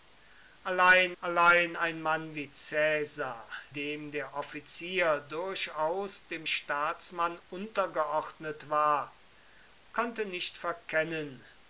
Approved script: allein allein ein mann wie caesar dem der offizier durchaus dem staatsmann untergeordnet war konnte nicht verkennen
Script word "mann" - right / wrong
right